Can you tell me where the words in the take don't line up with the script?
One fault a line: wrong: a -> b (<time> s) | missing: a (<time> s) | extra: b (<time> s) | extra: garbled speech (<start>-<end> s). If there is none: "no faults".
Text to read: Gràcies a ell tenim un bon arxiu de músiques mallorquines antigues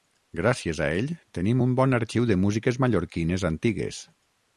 no faults